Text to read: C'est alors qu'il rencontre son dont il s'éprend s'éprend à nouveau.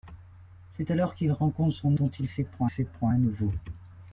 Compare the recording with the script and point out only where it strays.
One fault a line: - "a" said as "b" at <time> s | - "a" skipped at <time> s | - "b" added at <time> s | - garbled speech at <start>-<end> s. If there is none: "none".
none